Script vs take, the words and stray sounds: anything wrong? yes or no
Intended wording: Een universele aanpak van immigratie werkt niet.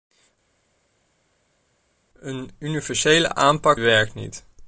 yes